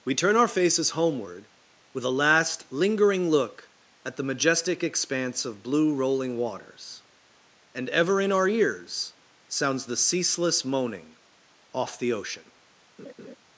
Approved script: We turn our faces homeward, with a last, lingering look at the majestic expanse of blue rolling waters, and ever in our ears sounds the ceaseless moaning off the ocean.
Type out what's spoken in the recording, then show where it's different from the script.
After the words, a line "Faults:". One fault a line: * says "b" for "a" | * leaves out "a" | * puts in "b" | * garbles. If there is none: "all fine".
We turn our faces homeward, with a last, lingering look at the majestic expanse of blue rolling waters, and ever in our ears sounds the ceaseless moaning off the ocean.
Faults:
all fine